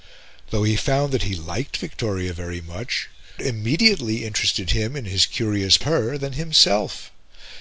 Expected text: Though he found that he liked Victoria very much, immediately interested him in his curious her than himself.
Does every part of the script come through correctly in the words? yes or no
yes